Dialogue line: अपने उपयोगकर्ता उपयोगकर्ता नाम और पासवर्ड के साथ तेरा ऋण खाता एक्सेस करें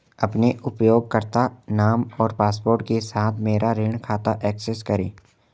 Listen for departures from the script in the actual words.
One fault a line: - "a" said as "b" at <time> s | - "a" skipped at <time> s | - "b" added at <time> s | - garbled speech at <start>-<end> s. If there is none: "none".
- "उपयोगकर्ता" skipped at 1.4 s
- "तेरा" said as "मेरा" at 3.4 s